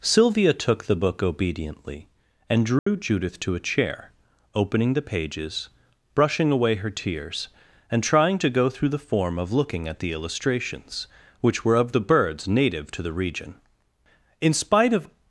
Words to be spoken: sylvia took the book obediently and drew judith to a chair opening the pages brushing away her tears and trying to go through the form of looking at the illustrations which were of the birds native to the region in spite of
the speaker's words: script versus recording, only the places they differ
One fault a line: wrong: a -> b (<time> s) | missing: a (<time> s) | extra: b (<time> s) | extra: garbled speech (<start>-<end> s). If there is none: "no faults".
no faults